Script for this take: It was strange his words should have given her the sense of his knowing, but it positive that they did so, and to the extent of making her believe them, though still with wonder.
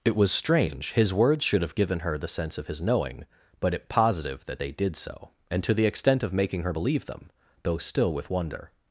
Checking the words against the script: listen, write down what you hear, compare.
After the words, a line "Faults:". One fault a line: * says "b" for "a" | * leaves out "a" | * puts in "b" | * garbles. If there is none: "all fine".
It was strange his words should have given her the sense of his knowing, but it positive that they did so, and to the extent of making her believe them, though still with wonder.
Faults:
all fine